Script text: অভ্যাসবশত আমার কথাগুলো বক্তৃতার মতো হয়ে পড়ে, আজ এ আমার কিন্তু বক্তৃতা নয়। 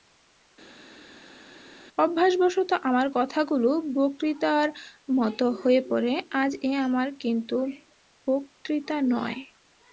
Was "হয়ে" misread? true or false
false